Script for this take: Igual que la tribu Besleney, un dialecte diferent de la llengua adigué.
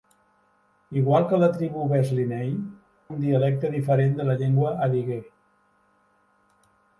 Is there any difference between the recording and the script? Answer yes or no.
no